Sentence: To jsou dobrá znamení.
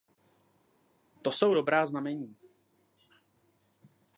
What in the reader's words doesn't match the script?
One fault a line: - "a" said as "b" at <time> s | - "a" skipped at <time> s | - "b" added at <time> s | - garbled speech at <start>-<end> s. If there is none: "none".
none